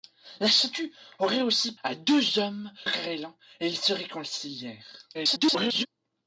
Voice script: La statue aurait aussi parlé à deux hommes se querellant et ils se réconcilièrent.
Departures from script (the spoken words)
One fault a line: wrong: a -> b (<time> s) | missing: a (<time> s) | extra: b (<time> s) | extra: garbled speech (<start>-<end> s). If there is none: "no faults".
missing: parlé (1.8 s)
missing: se (2.7 s)
extra: garbled speech (5.1-5.9 s)